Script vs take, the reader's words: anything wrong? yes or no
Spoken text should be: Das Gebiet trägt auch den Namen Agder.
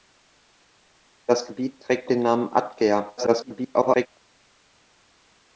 yes